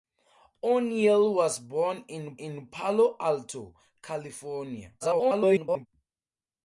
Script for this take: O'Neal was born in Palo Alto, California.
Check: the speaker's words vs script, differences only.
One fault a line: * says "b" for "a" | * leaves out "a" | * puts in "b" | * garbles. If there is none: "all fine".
* puts in "in"
* garbles